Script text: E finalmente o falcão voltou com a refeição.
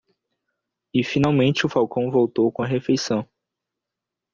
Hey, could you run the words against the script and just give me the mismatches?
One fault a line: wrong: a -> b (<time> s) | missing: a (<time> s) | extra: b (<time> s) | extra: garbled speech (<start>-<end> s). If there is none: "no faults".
no faults